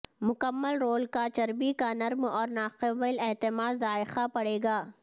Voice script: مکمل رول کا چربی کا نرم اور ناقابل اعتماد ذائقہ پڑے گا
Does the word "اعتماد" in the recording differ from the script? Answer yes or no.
no